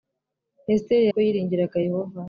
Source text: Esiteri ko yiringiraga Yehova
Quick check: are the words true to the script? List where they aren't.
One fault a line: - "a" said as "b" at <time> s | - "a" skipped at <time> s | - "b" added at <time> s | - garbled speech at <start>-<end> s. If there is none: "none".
none